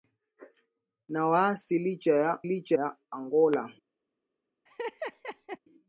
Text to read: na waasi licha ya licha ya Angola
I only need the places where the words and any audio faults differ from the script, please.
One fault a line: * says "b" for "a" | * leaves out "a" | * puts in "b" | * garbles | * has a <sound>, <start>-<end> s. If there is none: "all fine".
* has a laugh, 4.7-5.6 s